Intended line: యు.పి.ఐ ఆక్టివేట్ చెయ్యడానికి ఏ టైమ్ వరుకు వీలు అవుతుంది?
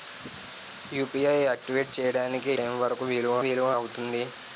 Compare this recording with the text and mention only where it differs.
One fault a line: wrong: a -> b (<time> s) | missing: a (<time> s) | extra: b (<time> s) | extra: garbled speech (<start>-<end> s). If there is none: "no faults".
missing: ఏ (2.5 s)
extra: వీలు (3.4 s)